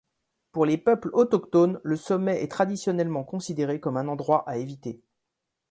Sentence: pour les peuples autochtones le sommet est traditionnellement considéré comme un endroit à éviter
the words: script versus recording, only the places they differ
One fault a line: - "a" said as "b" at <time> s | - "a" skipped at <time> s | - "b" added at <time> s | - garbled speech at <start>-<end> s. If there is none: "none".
none